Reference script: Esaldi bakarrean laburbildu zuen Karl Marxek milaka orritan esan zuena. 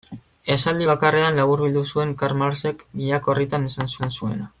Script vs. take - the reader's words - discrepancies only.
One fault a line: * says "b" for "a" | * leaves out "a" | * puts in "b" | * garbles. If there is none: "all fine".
* puts in "esan"